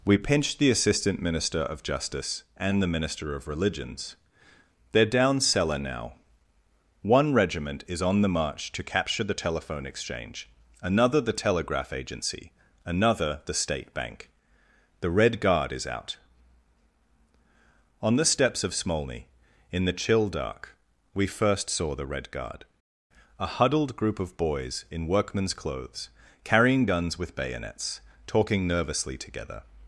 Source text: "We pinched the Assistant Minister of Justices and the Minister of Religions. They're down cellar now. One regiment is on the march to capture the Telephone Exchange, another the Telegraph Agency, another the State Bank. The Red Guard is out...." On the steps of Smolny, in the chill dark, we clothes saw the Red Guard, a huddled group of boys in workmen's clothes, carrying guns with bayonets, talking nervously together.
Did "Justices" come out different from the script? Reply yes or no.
yes